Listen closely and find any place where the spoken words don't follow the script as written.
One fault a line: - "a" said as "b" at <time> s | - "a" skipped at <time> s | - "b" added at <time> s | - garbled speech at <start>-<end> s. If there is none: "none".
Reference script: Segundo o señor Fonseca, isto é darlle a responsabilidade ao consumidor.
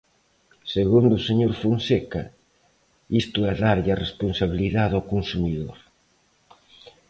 none